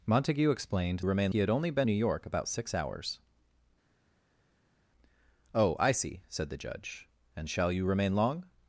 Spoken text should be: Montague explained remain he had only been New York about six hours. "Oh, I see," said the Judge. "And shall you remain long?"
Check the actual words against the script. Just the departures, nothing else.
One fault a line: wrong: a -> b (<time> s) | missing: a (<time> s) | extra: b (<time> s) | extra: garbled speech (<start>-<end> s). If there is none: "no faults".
no faults